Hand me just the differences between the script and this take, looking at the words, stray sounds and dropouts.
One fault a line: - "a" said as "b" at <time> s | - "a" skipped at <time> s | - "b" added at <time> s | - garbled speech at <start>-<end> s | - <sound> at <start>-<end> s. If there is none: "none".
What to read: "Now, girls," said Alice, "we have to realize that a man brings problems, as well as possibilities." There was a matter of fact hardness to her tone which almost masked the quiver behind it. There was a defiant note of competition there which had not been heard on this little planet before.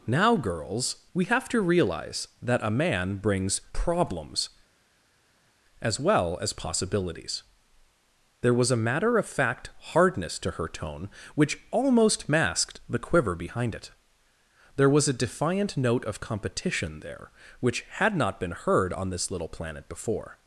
- "said Alice" skipped at 1.1 s